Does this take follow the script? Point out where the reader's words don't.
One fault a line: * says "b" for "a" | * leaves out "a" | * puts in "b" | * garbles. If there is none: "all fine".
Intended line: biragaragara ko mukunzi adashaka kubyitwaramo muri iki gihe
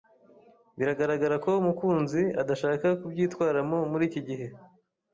all fine